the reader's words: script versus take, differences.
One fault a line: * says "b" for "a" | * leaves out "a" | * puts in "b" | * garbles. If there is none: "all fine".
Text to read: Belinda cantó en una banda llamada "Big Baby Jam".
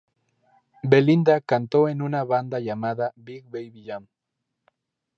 all fine